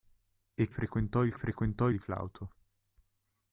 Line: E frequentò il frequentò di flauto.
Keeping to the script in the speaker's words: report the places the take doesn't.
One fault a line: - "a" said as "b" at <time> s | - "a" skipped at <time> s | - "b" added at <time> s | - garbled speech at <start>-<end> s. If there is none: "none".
none